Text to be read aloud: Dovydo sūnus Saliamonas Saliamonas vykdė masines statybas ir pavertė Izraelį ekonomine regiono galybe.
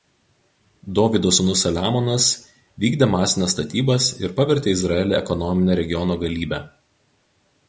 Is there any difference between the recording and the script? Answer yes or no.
yes